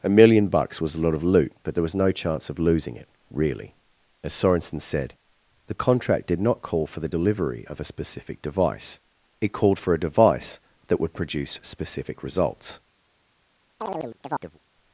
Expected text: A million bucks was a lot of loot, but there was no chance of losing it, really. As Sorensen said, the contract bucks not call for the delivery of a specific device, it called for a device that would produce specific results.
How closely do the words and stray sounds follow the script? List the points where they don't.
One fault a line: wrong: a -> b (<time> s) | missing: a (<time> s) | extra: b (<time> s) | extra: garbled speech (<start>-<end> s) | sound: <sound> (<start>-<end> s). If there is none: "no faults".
wrong: bucks -> did (6.2 s)
sound: chirp (13.8-14.6 s)